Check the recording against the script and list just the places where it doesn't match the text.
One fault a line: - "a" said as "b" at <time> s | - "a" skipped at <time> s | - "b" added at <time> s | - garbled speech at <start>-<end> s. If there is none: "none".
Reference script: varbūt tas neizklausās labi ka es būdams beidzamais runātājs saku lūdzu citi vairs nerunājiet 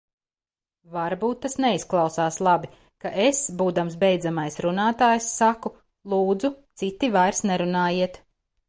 none